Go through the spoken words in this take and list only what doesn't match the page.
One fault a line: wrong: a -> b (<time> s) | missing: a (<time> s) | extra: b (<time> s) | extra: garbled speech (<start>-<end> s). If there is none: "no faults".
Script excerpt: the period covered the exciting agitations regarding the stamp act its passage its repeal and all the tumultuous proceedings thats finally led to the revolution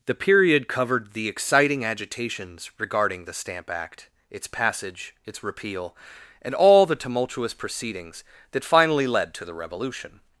wrong: thats -> that (8.5 s)